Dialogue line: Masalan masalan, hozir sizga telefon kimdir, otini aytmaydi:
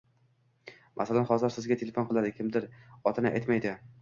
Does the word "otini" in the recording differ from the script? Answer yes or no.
no